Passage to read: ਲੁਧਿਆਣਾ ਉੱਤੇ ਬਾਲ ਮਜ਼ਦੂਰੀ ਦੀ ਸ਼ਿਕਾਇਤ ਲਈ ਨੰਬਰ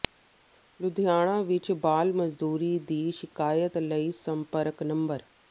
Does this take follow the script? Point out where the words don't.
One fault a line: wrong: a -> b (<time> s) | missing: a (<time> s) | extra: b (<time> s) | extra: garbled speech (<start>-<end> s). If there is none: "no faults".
wrong: ਉੱਤੇ -> ਵਿੱਚ (1.4 s)
extra: ਸੰਪਰਕ (4.2 s)